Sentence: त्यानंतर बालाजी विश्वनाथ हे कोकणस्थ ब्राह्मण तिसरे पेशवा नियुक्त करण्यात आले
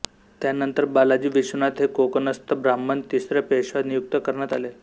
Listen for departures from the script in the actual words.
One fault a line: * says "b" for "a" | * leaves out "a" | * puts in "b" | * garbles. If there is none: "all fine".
all fine